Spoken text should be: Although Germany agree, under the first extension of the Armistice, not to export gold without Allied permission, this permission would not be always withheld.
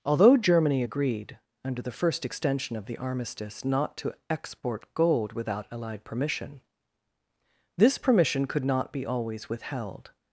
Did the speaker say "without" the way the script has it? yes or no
yes